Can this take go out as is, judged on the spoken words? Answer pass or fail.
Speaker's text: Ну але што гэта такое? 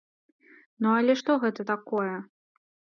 pass